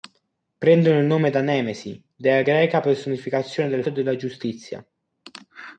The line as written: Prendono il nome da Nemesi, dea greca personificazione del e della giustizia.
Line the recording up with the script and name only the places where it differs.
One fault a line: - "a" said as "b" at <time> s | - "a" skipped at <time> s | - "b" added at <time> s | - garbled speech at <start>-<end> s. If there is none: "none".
none